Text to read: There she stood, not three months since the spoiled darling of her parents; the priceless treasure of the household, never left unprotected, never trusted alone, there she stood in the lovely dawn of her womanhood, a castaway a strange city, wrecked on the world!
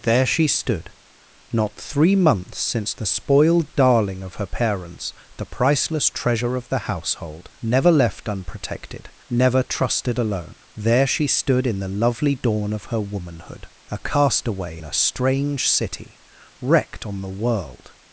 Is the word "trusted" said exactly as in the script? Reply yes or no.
yes